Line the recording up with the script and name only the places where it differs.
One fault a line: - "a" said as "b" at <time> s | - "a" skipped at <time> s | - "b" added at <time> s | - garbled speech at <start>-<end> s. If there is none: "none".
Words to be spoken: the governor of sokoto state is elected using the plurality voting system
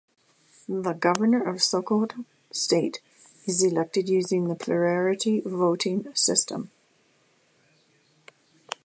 none